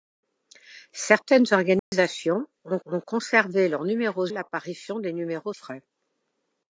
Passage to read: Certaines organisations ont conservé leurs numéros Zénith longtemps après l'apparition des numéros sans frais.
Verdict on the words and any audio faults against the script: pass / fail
fail